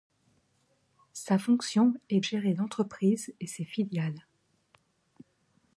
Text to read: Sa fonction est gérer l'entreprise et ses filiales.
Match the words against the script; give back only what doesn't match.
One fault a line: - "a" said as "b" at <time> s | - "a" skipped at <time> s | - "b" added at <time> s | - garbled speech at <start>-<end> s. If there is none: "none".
none